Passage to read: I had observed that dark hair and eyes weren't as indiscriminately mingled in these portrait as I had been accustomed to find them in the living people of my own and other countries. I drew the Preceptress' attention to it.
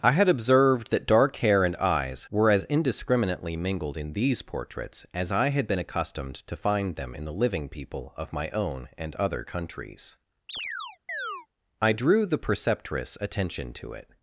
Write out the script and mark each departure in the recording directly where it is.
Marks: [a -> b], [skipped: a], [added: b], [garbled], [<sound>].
I had observed that dark hair and eyes [weren't -> were] as indiscriminately mingled in these [portrait -> portraits] as I had been accustomed to find them in the living people of my own and other countries. [chirp] I drew the Preceptress' attention to it.